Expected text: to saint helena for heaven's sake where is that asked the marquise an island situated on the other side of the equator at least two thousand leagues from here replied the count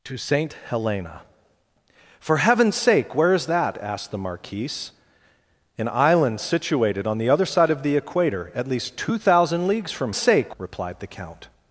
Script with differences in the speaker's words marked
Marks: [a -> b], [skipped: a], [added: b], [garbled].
to saint helena for heaven's sake where is that asked the marquise an island situated on the other side of the equator at least two thousand leagues from [here -> sake] replied the count